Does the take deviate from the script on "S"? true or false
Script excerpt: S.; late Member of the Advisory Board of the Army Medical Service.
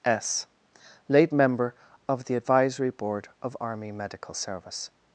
false